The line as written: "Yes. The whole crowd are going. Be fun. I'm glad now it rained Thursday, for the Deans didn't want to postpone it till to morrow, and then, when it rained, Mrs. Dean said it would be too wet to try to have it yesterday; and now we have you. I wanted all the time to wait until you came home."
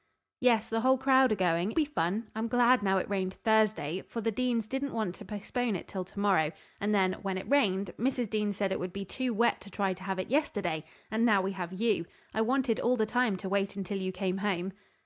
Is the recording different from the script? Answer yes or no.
no